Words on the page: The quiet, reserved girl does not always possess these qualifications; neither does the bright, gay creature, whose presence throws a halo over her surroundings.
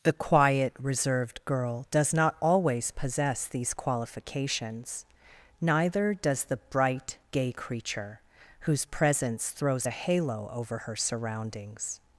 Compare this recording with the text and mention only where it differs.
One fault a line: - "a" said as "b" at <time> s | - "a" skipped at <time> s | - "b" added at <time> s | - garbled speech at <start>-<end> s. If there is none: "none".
none